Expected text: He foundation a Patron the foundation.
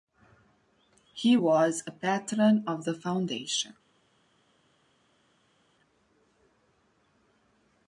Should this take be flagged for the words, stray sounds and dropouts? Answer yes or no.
yes